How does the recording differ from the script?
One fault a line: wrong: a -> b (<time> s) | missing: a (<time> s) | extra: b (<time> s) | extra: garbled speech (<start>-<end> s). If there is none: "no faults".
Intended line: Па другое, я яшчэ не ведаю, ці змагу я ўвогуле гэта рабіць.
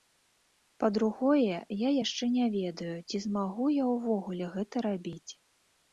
no faults